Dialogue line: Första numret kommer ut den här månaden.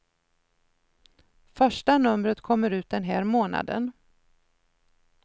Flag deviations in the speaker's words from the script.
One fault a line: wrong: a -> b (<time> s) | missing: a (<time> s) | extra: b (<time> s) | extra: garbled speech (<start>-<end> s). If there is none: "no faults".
no faults